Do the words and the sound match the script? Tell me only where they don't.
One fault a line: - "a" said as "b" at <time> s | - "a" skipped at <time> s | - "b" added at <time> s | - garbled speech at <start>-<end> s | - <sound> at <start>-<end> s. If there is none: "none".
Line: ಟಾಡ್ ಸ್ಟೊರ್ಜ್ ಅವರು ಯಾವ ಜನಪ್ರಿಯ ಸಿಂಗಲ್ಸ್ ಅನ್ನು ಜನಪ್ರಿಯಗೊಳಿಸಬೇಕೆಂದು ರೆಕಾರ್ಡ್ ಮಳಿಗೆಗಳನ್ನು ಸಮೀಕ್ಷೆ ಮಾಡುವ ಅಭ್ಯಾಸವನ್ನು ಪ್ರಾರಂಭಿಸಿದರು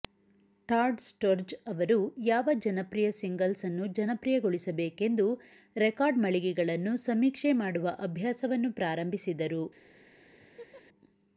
- laugh at 10.4-10.8 s